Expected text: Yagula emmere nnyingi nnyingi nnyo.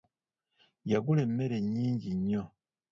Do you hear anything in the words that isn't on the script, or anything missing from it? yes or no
yes